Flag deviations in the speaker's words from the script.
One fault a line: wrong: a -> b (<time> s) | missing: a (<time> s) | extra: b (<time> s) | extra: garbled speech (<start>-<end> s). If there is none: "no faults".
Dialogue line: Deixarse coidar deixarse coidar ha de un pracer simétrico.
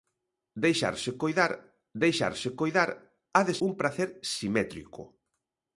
no faults